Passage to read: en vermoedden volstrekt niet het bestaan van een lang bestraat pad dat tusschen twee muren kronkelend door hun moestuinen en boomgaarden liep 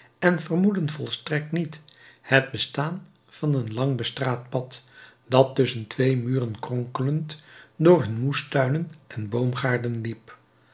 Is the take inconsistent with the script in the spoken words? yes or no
no